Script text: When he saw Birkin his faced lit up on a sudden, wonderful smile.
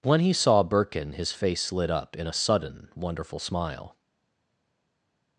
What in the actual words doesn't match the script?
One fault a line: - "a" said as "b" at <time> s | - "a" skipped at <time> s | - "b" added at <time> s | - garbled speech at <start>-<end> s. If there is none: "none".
- "faced" said as "face" at 1.3 s
- "on" said as "in" at 2.1 s